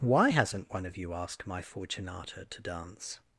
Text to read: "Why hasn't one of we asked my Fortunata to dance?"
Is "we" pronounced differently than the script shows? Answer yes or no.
yes